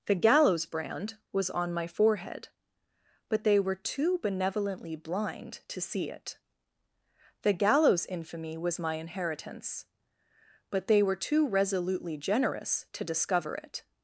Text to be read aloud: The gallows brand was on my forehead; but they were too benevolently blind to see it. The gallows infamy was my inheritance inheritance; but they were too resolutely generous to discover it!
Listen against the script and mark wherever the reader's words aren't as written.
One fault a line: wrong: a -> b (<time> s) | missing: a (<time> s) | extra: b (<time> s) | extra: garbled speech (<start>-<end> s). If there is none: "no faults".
missing: inheritance (9.9 s)